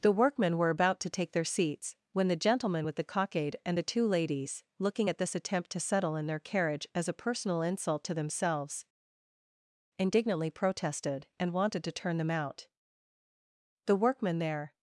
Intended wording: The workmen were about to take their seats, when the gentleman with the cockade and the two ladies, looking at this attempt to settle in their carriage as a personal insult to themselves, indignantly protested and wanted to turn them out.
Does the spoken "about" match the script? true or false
true